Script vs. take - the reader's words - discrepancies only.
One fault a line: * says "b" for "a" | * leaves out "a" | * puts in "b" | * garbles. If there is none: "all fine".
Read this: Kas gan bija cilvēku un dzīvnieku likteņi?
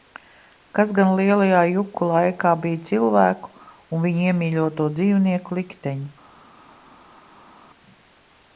* puts in "lielajā juku laikā"
* puts in "viņu iemīļoto"